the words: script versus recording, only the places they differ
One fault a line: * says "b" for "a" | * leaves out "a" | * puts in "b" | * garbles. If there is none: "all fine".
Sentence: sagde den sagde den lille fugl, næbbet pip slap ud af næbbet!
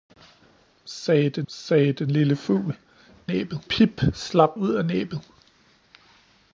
all fine